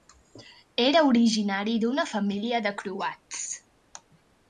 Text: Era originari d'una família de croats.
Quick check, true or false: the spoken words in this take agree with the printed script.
true